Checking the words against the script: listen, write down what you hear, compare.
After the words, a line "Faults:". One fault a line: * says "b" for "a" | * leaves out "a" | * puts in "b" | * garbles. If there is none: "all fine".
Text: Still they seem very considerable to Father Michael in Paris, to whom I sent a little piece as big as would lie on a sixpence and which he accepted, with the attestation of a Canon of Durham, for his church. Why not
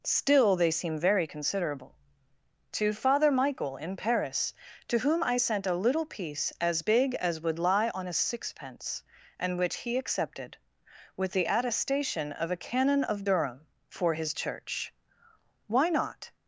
Still they seem very considerable to Father Michael in Paris, to whom I sent a little piece as big as would lie on a sixpence and which he accepted, with the attestation of a Canon of Durham, for his church. Why not
Faults:
all fine